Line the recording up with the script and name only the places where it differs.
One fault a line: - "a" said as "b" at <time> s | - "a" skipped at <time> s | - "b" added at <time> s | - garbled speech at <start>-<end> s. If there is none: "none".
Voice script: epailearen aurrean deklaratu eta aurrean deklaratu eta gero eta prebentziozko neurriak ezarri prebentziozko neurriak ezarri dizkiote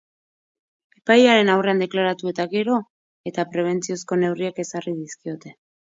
- "aurrean deklaratu eta" skipped at 2.5 s
- "prebentziozko neurriak ezarri" skipped at 4.9 s